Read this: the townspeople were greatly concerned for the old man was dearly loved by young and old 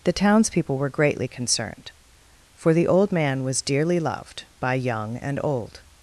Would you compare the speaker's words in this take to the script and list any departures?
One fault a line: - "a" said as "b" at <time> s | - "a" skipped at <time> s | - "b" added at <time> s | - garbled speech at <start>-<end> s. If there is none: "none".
none